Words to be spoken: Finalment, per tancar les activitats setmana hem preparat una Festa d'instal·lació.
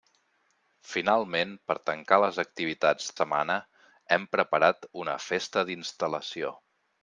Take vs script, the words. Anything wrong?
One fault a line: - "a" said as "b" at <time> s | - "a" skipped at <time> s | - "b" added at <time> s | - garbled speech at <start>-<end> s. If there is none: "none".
none